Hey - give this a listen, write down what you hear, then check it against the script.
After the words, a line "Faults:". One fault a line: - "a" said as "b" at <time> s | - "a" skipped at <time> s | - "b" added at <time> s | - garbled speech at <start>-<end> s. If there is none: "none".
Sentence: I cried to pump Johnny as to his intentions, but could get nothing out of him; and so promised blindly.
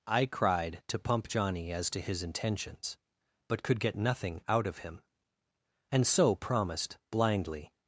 I cried to pump Johnny as to his intentions, but could get nothing out of him; and so promised blindly.
Faults:
none